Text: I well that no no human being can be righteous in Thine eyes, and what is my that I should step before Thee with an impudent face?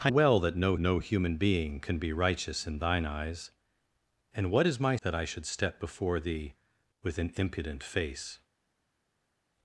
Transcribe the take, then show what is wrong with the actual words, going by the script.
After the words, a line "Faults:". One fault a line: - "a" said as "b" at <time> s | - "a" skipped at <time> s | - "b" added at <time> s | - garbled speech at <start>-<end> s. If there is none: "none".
I well that no no human being can be righteous in Thine eyes, and what is my that I should step before Thee with an impudent face?
Faults:
none